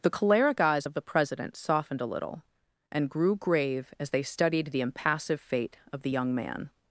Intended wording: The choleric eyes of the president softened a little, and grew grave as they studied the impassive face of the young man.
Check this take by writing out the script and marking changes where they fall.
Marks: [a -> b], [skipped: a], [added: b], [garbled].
The choleric eyes of the president softened a little, and grew grave as they studied the impassive [face -> fate] of the young man.